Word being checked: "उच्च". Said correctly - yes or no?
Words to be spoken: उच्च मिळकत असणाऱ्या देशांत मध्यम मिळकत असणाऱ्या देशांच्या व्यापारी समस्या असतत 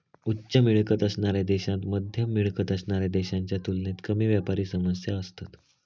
yes